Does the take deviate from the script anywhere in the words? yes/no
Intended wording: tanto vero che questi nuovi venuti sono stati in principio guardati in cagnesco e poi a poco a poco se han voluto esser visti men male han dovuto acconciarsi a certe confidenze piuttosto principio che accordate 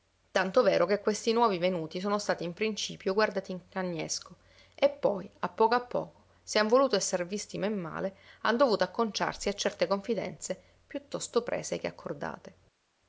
yes